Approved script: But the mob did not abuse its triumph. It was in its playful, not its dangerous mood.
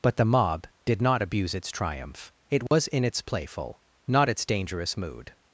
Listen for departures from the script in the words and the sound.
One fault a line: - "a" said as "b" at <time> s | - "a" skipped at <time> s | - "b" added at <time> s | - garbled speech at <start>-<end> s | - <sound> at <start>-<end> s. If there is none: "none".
- dropout at 2.7-2.7 s